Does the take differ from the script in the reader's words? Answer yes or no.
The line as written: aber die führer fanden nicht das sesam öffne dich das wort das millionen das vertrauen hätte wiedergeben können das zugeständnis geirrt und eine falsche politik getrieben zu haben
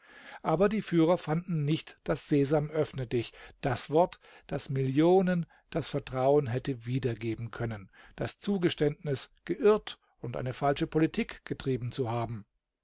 no